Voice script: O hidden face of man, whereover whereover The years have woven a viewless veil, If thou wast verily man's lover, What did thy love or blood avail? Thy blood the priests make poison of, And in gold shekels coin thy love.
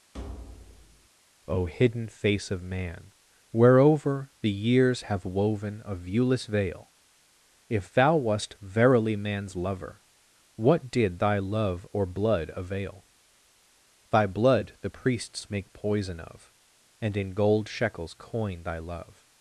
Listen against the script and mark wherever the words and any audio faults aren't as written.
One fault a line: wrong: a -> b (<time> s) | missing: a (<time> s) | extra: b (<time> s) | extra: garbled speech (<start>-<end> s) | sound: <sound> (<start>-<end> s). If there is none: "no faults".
sound: thud (0.1-1.1 s)
missing: whereover (4.3 s)